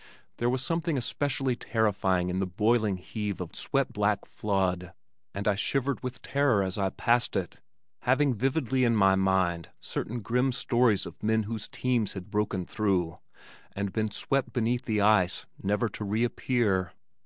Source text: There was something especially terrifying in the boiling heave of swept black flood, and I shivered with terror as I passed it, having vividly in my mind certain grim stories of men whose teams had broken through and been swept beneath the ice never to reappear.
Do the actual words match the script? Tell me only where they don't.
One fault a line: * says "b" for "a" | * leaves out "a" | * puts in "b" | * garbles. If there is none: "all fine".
all fine